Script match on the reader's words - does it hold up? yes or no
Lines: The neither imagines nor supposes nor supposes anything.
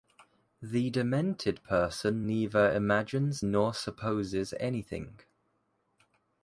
no